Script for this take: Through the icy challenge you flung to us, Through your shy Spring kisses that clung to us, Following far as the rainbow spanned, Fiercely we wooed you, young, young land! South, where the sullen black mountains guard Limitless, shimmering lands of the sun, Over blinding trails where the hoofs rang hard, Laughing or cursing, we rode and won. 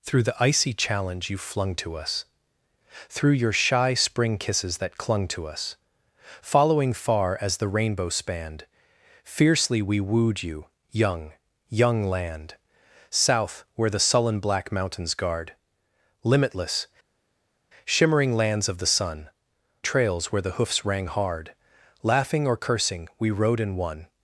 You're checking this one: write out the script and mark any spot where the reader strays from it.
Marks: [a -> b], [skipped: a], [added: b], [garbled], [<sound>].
Through the icy challenge you flung to us, Through your shy Spring kisses that clung to us, Following far as the rainbow spanned, Fiercely we wooed you, young, young land! South, where the sullen black mountains guard Limitless, shimmering lands of the sun, [skipped: Over blinding] trails where the hoofs rang hard, Laughing or cursing, we rode and won.